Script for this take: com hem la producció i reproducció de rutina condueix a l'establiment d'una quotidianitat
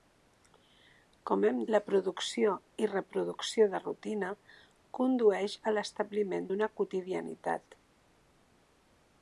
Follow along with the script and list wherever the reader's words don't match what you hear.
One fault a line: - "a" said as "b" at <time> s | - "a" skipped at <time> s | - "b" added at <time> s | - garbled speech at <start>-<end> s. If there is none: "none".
none